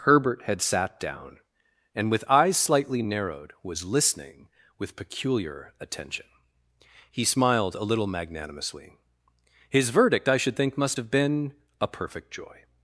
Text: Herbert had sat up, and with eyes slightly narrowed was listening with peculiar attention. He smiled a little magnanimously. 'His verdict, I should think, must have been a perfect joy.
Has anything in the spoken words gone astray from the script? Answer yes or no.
yes